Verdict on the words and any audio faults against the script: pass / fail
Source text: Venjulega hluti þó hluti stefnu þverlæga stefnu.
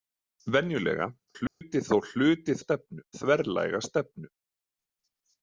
fail